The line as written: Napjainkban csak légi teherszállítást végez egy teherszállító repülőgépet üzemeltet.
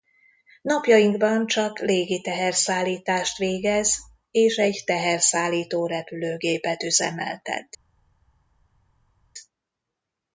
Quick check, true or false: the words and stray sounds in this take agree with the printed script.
false